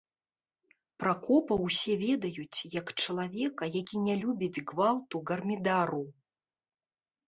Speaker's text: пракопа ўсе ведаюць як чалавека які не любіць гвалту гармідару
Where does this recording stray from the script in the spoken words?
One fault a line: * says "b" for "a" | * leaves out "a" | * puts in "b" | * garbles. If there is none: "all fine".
all fine